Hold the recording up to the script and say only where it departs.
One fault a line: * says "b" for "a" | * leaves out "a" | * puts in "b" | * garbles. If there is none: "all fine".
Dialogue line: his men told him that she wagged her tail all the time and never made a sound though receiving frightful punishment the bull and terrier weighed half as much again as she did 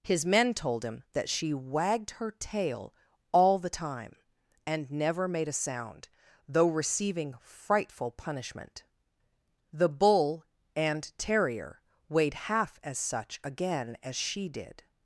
* says "such" for "much"